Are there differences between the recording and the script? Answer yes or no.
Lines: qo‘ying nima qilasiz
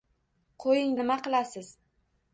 no